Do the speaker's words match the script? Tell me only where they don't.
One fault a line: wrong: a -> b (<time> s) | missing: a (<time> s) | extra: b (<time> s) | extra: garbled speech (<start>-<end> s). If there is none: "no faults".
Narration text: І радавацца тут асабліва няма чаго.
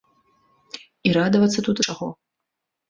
missing: асабліва няма (1.8 s)